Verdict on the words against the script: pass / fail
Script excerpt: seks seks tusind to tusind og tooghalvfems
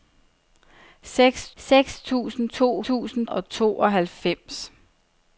pass